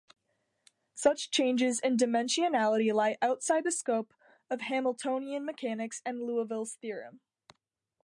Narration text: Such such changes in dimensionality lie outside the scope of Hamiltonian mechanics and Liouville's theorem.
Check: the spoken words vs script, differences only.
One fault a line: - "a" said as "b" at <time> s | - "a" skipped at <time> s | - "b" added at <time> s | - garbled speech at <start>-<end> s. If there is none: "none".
- "such" skipped at 1.3 s